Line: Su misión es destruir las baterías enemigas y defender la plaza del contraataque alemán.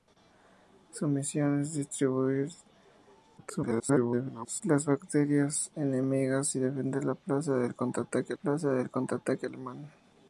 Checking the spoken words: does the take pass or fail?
fail